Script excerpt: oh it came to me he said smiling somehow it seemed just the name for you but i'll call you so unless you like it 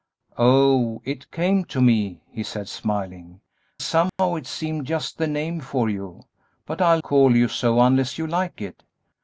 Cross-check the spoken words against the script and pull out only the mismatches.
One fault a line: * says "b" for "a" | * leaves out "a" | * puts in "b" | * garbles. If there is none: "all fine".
all fine